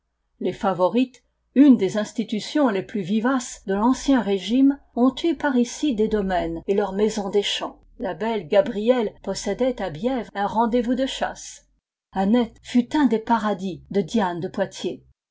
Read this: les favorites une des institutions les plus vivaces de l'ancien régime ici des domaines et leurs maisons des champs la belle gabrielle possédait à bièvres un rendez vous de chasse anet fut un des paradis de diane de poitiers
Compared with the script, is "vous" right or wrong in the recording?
right